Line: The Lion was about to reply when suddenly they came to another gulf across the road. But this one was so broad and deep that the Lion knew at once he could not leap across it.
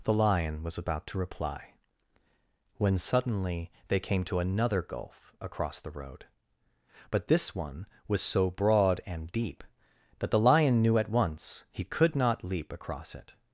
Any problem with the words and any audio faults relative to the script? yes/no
no